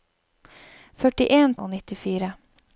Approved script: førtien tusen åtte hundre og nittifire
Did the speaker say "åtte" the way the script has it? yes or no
no